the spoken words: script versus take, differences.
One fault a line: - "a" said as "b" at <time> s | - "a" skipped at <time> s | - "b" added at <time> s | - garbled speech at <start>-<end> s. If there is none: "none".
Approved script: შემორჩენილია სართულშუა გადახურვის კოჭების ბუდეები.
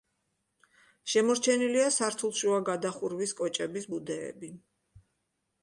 none